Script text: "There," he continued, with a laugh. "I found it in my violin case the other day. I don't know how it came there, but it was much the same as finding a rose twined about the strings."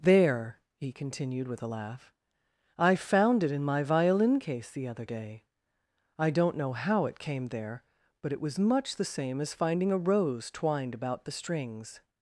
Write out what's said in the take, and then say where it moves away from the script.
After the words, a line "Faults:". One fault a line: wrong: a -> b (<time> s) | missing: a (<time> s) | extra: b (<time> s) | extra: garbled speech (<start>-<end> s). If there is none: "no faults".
"There," he continued, with a laugh. "I found it in my violin case the other day. I don't know how it came there, but it was much the same as finding a rose twined about the strings."
Faults:
no faults